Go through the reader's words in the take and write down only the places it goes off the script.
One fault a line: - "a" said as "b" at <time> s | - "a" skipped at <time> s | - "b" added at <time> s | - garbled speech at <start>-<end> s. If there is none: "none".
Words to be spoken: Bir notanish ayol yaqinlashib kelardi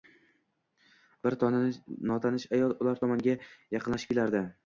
- "ular tomonga" added at 2.9 s